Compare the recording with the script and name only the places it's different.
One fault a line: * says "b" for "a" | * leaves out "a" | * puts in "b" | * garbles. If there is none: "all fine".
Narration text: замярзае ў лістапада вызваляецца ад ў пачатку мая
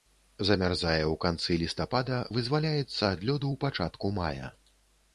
* puts in "канцы"
* puts in "лёду"